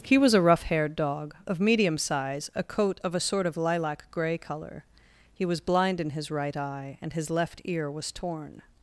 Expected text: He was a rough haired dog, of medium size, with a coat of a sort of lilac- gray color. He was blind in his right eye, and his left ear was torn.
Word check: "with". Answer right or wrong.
wrong